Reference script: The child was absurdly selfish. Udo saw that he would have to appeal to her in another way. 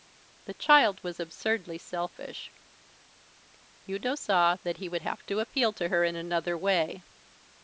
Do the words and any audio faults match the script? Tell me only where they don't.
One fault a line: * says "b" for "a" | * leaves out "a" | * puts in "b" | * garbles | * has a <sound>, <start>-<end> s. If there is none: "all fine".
all fine